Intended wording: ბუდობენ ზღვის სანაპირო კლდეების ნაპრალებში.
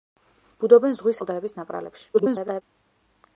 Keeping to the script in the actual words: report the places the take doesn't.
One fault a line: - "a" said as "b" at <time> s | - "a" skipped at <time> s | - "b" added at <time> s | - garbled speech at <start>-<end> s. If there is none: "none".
- "სანაპირო" skipped at 1.2 s
- garbled speech at 2.1-2.6 s